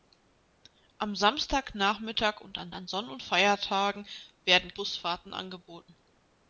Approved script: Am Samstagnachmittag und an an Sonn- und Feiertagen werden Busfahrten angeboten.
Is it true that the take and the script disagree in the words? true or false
false